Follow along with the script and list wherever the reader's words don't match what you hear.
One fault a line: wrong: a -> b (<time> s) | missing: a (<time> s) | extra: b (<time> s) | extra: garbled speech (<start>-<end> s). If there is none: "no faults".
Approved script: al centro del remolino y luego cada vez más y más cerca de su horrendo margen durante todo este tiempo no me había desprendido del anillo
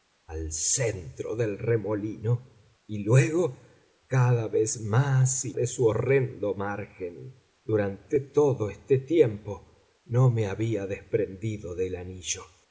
missing: más cerca (5.5 s)